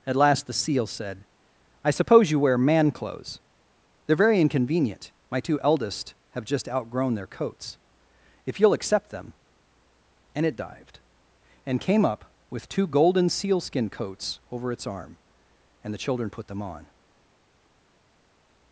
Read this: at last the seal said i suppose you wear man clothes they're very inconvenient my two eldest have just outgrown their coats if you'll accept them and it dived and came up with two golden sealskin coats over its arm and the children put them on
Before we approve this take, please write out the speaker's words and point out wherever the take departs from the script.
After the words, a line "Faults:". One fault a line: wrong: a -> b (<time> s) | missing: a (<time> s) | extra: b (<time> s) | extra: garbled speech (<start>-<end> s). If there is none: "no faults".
at last the seal said i suppose you wear man clothes they're very inconvenient my two eldest have just outgrown their coats if you'll accept them and it dived and came up with two golden sealskin coats over its arm and the children put them on
Faults:
no faults